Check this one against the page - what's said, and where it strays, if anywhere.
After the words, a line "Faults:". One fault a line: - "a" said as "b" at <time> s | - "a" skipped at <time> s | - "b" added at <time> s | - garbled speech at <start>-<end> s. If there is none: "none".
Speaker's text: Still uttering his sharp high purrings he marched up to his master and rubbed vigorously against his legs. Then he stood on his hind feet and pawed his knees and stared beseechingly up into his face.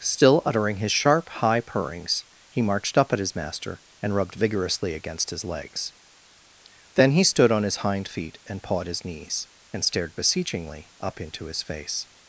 Still uttering his sharp high purrings he marched up at his master and rubbed vigorously against his legs. Then he stood on his hind feet and pawed his knees and stared beseechingly up into his face.
Faults:
- "to" said as "at" at 3.1 s